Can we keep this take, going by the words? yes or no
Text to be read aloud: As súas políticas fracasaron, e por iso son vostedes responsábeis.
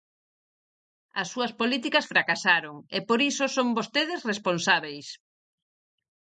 yes